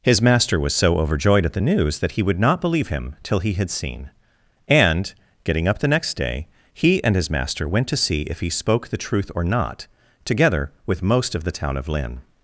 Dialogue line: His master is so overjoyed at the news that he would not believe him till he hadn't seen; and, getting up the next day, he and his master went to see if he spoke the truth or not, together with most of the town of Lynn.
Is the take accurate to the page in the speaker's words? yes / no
no